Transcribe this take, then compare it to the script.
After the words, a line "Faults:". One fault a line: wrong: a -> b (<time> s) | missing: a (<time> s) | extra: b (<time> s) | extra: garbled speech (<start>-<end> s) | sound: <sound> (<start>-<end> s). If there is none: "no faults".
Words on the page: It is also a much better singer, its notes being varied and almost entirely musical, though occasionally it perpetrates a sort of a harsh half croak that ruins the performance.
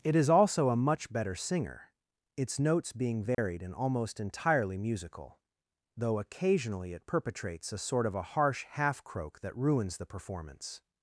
It is also a much better singer, its notes being varied and almost entirely musical, though occasionally it perpetrates a sort of a harsh half croak that ruins the performance.
Faults:
sound: dropout (3.3-3.4 s)